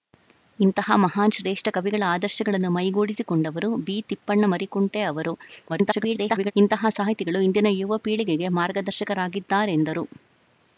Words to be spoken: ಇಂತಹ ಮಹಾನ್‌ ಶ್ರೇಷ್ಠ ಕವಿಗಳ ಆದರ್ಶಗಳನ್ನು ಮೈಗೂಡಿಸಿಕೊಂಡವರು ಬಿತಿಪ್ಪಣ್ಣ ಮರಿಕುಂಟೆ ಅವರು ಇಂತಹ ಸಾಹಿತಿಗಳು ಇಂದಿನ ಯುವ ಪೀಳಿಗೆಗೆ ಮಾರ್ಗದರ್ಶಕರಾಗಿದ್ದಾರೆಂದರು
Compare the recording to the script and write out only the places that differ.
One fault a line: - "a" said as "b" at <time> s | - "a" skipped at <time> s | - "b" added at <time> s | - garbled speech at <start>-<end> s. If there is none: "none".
- garbled speech at 5.7-6.5 s